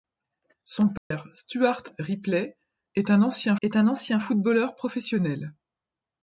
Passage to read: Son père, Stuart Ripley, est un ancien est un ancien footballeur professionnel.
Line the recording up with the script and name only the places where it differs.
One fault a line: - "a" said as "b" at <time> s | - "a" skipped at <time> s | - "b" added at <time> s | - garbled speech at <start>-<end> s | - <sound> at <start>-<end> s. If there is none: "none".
- dropout at 1.0-1.1 s